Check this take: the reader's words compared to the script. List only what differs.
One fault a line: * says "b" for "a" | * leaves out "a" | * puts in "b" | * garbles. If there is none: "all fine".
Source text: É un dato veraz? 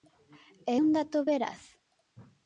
all fine